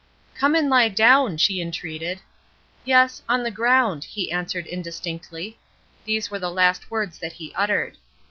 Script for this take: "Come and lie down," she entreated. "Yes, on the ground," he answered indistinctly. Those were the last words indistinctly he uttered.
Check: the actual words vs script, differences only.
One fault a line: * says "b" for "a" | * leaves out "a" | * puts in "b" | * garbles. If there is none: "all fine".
* says "These" for "Those"
* says "that" for "indistinctly"